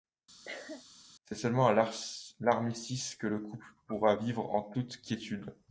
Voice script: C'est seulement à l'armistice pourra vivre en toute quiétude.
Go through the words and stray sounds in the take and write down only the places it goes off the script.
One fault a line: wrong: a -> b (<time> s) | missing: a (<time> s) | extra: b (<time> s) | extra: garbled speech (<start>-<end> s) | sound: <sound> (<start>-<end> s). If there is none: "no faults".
sound: cough (0.4-0.8 s)
extra: que le couple (3.1 s)